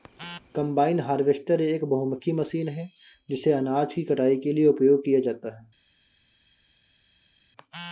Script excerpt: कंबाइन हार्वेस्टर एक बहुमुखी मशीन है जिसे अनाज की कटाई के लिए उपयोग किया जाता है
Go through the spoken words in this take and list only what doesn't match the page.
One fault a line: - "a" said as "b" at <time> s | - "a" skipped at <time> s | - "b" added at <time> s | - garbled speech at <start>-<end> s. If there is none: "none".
none